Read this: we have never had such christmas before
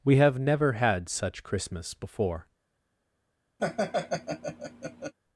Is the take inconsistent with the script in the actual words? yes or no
no